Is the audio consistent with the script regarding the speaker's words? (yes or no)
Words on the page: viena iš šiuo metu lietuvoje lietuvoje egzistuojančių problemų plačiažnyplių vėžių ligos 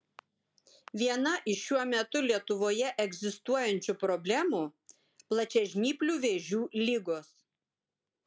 no